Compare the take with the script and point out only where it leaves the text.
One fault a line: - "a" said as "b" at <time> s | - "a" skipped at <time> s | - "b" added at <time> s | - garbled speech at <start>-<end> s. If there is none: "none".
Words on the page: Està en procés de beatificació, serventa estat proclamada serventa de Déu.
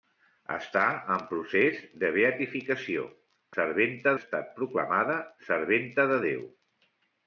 none